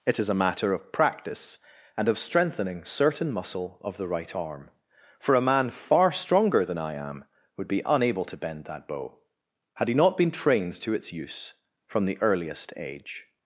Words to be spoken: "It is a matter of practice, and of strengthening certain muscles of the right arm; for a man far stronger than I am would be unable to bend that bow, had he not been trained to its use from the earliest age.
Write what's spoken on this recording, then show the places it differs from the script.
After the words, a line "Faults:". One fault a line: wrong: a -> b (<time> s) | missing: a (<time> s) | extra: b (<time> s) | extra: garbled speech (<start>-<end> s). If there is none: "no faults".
"It is a matter of practice, and of strengthening certain muscle of the right arm; for a man far stronger than I am would be unable to bend that bow, had he not been trained to its use from the earliest age.
Faults:
wrong: muscles -> muscle (3.3 s)